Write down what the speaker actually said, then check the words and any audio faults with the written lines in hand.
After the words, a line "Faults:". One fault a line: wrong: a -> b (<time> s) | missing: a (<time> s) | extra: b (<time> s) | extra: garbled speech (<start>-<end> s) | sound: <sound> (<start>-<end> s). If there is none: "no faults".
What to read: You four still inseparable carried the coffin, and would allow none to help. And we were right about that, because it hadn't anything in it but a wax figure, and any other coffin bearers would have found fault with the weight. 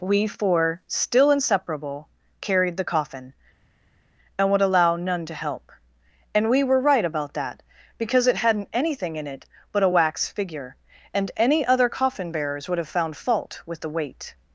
We four still inseparable carried the coffin, and would allow none to help. And we were right about that, because it hadn't anything in it but a wax figure, and any other coffin bearers would have found fault with the weight.
Faults:
wrong: You -> We (0.0 s)